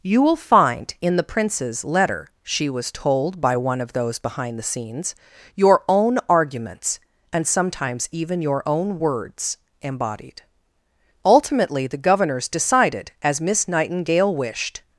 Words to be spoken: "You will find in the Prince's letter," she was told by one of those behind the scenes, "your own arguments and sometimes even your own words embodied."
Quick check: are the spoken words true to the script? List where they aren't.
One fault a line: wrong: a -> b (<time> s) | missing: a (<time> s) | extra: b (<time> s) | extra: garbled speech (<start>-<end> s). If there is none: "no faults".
extra: Ultimately the Governors decided as Miss Nightingale wished (11.2 s)